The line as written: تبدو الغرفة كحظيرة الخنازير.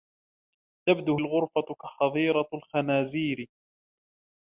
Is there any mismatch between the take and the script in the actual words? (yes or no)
no